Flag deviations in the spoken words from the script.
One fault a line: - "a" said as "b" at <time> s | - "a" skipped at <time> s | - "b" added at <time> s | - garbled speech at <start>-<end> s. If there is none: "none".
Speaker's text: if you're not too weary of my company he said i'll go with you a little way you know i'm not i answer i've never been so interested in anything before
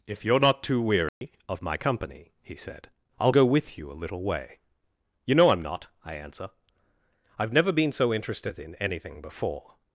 none